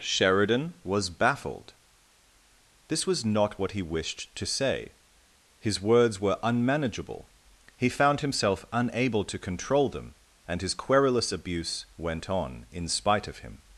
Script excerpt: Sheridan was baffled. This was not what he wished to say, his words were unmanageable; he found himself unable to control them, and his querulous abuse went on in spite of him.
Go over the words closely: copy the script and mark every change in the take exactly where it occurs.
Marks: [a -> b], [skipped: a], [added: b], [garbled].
Sheridan was baffled. This was not what he wished to say, his words were unmanageable; he found himself unable to control them, and his querulous abuse went on in spite of him.